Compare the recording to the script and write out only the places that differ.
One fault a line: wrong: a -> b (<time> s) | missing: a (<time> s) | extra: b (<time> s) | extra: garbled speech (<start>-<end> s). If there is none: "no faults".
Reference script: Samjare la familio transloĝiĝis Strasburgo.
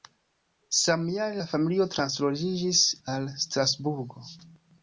extra: al (3.1 s)